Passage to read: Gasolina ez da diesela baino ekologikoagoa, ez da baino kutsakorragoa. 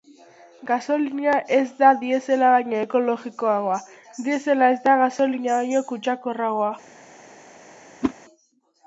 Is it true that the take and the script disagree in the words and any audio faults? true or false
true